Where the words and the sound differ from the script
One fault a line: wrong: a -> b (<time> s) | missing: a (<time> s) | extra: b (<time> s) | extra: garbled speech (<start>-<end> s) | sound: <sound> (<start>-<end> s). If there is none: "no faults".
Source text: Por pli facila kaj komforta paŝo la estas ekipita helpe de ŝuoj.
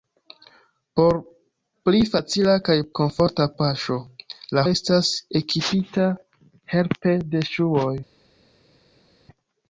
no faults